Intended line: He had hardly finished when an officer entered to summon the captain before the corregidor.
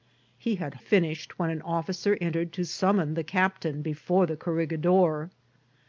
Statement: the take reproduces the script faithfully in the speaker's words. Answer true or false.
false